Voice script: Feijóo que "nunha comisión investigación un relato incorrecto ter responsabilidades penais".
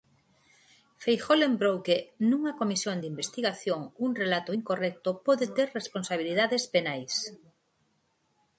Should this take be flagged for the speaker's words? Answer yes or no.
yes